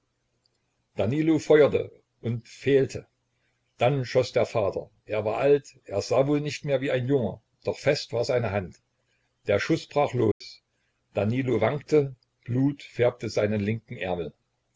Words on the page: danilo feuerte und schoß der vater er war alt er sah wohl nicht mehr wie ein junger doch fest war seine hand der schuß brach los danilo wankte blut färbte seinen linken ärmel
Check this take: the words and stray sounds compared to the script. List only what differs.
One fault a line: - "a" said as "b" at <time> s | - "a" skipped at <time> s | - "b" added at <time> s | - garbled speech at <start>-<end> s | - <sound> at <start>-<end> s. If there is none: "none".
- "fehlte dann" added at 2.5 s
- dropout at 10.3-10.4 s